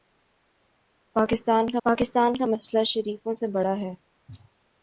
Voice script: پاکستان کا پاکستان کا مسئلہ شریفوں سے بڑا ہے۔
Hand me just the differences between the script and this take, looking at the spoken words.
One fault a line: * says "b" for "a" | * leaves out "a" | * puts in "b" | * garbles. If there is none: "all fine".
all fine